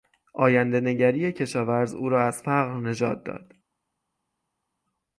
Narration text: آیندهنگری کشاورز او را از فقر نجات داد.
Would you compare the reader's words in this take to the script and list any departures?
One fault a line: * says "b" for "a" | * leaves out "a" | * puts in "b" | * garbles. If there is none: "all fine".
all fine